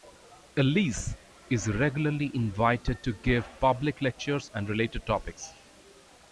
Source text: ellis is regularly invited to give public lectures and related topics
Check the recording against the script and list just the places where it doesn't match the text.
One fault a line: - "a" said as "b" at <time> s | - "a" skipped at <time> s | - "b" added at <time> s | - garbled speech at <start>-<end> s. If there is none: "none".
none